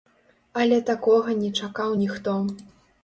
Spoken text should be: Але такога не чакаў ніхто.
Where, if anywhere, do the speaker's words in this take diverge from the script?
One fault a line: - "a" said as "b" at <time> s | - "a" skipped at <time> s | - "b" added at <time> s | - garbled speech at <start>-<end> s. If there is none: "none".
none